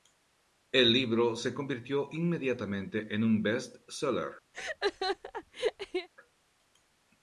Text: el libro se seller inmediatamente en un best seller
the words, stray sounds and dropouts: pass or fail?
fail